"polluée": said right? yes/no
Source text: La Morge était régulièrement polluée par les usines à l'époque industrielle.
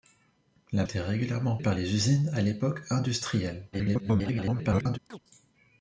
no